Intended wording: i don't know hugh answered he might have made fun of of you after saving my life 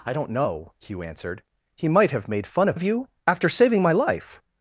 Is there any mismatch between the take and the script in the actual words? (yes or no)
no